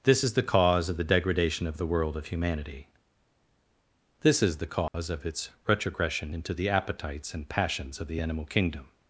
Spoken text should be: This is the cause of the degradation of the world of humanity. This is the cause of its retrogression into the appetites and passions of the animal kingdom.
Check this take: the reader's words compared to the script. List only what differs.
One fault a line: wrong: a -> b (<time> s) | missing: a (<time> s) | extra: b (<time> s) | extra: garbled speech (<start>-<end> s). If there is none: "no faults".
no faults